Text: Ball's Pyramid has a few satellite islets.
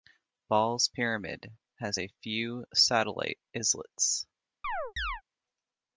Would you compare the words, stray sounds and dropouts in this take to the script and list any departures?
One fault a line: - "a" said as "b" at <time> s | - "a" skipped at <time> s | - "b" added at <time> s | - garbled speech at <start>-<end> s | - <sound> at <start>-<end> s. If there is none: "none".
- chirp at 4.6-5.2 s